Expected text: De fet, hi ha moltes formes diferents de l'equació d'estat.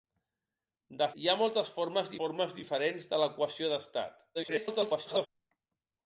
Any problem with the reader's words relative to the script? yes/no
yes